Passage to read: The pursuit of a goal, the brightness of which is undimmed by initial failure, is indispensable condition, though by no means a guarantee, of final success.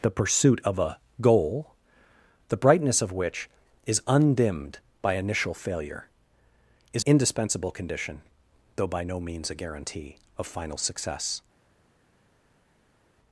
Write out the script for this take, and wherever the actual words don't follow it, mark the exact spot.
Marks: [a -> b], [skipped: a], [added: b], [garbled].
The pursuit of a goal, the brightness of which is undimmed by initial failure, is indispensable condition, though by no means a guarantee, of final success.